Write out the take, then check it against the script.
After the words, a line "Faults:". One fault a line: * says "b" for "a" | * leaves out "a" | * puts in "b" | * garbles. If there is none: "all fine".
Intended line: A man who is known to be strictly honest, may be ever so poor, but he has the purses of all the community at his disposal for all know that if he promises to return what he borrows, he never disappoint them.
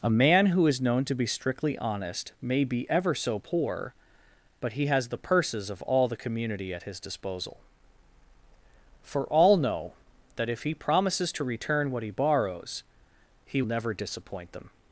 A man who is known to be strictly honest, may be ever so poor, but he has the purses of all the community at his disposal for all know that if he promises to return what he borrows, he never disappoint them.
Faults:
all fine